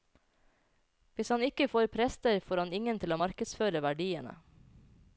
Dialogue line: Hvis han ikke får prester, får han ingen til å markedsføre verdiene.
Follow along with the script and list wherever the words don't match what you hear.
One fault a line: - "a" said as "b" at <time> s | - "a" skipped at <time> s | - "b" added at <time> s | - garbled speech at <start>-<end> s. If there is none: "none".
none